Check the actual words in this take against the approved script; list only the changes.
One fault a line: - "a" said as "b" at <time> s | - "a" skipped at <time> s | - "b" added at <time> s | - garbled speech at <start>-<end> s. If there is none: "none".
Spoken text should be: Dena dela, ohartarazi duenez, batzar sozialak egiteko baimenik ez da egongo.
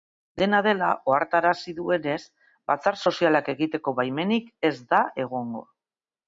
none